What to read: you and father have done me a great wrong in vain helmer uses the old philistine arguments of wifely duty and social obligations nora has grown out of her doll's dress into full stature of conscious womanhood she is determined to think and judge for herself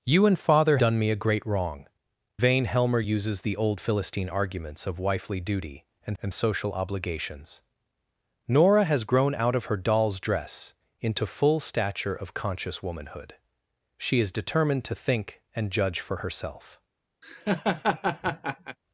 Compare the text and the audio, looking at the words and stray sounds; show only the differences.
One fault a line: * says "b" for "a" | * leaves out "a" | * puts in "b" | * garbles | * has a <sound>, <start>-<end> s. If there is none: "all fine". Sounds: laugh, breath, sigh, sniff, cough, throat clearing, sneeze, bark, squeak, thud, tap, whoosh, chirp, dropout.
* leaves out "have"
* leaves out "in"
* puts in "and"
* has a laugh, 17.2-18.8 s